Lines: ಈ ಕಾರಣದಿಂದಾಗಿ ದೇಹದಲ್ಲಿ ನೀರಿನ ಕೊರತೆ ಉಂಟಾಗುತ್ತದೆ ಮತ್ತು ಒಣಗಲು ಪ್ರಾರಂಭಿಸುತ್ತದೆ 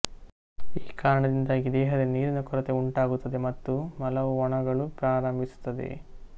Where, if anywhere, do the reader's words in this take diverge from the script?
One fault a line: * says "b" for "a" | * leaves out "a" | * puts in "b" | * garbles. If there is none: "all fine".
* puts in "ಮಲವು"